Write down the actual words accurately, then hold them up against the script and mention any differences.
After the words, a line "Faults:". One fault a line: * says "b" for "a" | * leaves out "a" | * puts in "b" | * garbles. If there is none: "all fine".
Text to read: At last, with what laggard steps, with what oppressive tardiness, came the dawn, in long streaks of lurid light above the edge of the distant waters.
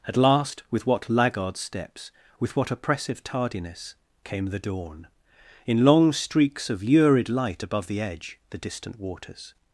At last, with what laggard steps, with what oppressive tardiness, came the dawn, in long streaks of lurid light above the edge the distant waters.
Faults:
* leaves out "of"